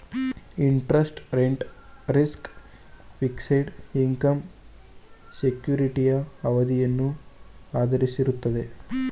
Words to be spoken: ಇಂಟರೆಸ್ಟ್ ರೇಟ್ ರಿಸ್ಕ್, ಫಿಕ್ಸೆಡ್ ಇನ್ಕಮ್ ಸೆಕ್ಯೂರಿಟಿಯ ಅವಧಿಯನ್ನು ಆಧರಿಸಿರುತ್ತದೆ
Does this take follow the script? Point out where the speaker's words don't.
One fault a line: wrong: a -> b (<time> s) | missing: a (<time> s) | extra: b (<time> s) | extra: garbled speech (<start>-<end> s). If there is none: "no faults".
no faults